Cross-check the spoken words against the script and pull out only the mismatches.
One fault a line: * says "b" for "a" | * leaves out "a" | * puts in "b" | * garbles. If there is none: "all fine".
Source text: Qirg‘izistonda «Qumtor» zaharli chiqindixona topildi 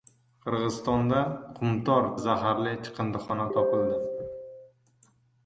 all fine